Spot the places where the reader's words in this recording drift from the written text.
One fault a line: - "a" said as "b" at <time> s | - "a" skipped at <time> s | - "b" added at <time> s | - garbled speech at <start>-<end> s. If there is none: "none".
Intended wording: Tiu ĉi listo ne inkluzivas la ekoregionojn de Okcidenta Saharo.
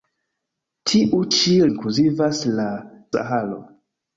- "listo ne" skipped at 1.5 s
- "ekoregionojn de Okcidenta" skipped at 2.7 s